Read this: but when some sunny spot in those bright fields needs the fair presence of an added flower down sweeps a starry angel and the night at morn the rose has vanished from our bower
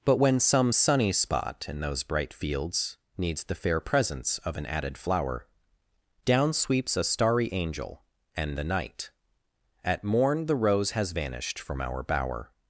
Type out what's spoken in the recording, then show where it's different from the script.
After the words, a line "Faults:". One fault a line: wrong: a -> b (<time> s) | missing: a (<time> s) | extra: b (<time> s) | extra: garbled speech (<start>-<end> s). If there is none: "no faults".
but when some sunny spot in those bright fields needs the fair presence of an added flower down sweeps a starry angel and the night at morn the rose has vanished from our bower
Faults:
no faults